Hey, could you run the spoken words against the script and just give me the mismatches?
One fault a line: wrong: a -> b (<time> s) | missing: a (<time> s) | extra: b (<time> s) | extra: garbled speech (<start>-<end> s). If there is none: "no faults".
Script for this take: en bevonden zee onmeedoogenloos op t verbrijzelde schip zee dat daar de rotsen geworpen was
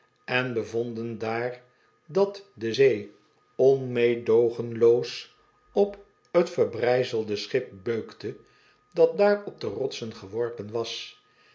extra: daar dat de (1.2 s)
wrong: zee -> beukte (7.8 s)
extra: op (9.4 s)